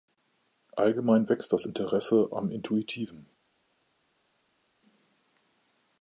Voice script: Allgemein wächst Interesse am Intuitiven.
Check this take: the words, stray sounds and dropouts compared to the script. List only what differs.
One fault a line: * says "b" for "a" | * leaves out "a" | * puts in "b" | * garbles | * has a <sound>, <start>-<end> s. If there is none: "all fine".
* puts in "das"